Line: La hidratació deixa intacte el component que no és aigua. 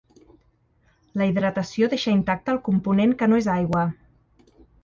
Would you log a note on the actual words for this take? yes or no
no